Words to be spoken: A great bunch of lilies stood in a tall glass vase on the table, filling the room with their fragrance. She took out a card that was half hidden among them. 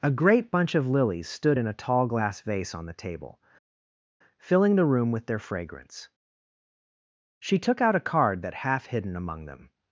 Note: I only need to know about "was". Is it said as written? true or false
false